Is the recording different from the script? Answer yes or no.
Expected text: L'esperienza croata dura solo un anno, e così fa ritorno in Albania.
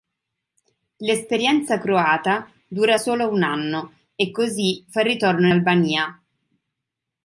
yes